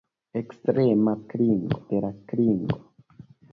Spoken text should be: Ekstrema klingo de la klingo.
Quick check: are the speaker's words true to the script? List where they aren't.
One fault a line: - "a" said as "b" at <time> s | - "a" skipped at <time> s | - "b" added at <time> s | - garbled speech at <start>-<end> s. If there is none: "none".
none